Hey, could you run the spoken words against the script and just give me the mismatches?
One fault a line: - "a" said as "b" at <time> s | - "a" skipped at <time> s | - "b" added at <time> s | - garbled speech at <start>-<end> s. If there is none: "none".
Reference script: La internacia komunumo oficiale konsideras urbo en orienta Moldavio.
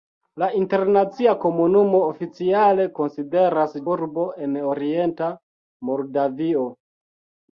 none